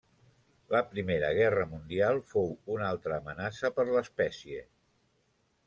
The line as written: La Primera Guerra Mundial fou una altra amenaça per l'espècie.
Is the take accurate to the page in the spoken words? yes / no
yes